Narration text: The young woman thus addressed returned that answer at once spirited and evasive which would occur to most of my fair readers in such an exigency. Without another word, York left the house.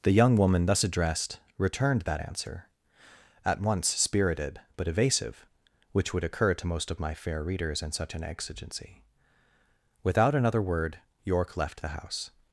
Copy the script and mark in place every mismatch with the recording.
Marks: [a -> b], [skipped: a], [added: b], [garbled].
The young woman thus addressed returned that answer at once spirited [and -> but] evasive which would occur to most of my fair readers in such an exigency. Without another word, York left the house.